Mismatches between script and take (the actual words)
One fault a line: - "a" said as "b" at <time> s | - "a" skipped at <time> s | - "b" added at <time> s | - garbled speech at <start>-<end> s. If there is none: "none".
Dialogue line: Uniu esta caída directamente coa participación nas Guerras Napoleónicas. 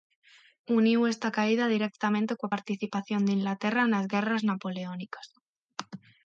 - "de Inglaterra" added at 3.2 s